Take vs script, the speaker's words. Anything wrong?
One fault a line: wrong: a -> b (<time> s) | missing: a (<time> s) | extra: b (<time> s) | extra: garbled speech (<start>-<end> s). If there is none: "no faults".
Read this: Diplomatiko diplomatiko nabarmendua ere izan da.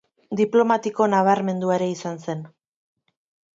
missing: diplomatiko (1.1 s)
wrong: da -> zen (2.3 s)